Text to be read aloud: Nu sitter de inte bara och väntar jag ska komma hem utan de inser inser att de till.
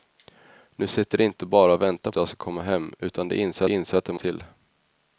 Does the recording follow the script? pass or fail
pass